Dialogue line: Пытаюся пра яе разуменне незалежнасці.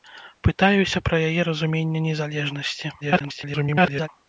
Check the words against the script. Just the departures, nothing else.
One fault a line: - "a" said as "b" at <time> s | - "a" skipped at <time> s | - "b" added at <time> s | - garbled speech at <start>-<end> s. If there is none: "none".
- garbled speech at 3.0-4.1 s